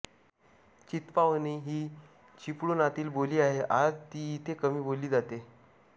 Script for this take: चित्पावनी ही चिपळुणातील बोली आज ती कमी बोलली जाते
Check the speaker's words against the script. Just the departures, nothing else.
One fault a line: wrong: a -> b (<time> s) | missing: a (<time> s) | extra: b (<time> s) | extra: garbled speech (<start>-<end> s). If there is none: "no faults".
extra: आहे (3.4 s)
extra: इथे (4.3 s)